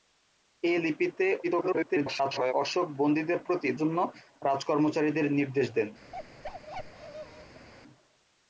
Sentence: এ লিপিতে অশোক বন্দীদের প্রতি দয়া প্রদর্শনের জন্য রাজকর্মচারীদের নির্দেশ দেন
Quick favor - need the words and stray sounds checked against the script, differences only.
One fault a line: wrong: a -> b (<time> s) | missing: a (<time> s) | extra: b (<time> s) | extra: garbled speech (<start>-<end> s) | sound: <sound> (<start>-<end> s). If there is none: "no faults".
extra: garbled speech (1.4-2.5 s)
missing: দয়া প্রদর্শনের (3.7 s)
sound: bark (6.1-7.7 s)